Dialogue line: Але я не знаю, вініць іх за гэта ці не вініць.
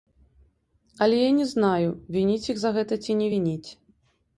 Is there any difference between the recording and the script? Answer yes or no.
no